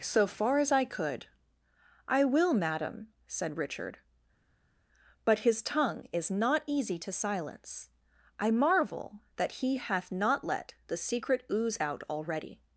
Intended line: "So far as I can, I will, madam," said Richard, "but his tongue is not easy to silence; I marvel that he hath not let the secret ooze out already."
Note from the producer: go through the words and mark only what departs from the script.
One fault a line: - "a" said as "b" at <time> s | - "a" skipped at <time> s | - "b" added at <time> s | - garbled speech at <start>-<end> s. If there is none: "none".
- "can" said as "could" at 0.8 s